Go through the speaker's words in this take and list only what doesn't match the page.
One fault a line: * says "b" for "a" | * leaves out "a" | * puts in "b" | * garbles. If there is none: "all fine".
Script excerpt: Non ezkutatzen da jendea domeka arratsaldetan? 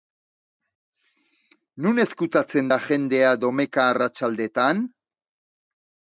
all fine